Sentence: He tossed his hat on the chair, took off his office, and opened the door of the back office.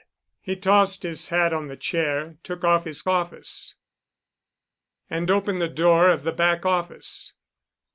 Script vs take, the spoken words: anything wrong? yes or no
no